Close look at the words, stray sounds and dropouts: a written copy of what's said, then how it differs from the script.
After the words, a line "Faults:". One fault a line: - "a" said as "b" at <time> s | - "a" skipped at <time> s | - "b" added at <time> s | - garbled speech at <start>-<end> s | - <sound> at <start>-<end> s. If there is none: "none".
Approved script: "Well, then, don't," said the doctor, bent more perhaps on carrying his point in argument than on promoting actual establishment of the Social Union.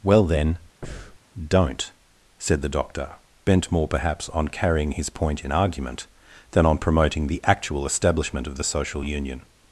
"Well, then, don't," said the doctor, bent more perhaps on carrying his point in argument than on promoting the actual establishment of the Social Union.
Faults:
- breath at 0.8-1.2 s
- "the" added at 7.3 s